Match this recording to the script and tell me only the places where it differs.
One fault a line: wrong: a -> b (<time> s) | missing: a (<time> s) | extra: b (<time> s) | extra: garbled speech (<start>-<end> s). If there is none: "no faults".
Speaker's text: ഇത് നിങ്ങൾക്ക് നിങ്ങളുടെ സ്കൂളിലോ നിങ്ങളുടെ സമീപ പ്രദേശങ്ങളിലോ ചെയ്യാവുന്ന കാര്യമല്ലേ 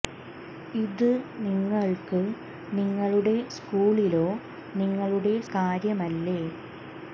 missing: സമീപ പ്രദേശങ്ങളിലോ ചെയ്യാവുന്ന (5.3 s)